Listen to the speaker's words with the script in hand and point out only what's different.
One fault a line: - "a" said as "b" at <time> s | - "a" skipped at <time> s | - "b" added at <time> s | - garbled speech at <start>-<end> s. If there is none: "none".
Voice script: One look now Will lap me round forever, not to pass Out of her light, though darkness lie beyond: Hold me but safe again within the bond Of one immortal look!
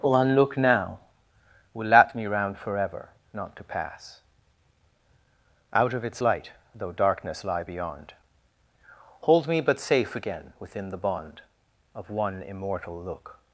- "her" said as "its" at 6.0 s